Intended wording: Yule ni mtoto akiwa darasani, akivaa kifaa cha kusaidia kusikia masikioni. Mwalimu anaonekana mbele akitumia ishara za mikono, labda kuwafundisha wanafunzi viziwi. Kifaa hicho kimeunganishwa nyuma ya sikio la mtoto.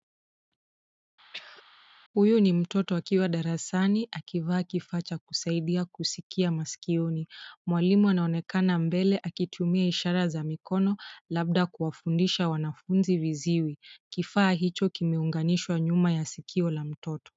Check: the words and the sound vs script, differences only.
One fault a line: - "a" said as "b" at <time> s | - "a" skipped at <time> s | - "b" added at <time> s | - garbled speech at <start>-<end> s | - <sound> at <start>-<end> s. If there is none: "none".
- throat clearing at 1.3-1.6 s
- "Yule" said as "Huyu" at 2.1 s